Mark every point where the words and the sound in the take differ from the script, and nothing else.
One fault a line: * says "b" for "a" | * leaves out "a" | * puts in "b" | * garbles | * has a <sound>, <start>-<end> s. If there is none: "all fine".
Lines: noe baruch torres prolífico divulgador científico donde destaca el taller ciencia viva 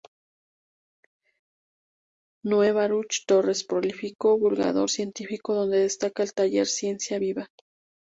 all fine